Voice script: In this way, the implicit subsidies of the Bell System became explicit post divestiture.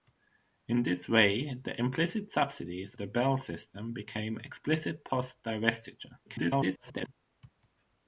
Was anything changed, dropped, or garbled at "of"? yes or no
yes